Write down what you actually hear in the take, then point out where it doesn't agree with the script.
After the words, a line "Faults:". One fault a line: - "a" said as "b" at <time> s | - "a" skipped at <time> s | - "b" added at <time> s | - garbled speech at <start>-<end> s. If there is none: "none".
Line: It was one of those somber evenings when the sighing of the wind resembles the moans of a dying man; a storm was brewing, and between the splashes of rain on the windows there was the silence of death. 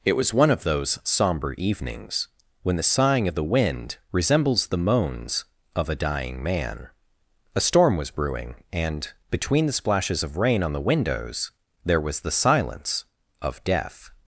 It was one of those somber evenings when the sighing of the wind resembles the moans of a dying man; a storm was brewing, and between the splashes of rain on the windows there was the silence of death.
Faults:
none